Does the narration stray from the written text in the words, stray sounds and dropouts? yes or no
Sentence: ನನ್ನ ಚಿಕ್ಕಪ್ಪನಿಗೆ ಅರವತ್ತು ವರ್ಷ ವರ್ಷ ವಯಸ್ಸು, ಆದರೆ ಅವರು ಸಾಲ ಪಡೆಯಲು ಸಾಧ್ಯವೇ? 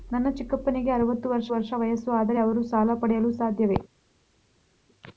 no